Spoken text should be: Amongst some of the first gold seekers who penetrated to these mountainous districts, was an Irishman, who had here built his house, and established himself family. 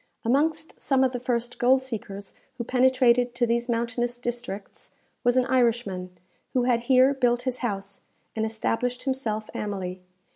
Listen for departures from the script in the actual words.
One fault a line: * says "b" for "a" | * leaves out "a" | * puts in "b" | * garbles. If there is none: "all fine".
all fine